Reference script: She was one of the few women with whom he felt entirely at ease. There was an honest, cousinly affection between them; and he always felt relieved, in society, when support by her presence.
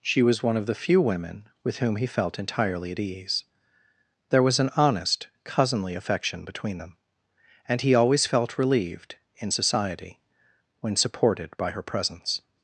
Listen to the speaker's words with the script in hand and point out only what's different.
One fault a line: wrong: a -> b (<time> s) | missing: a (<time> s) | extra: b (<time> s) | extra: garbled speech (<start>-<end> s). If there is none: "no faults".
wrong: support -> supported (11.0 s)